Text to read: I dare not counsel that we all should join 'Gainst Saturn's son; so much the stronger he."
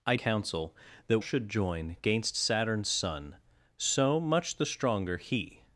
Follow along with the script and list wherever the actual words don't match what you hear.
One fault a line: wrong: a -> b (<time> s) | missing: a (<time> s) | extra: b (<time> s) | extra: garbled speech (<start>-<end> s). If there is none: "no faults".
missing: dare not (0.1 s)
missing: we all (1.2 s)